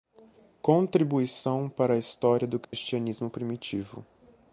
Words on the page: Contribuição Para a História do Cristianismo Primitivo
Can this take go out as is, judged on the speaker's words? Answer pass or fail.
pass